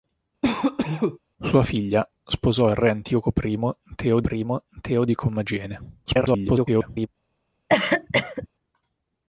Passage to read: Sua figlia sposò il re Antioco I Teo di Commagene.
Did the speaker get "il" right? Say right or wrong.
right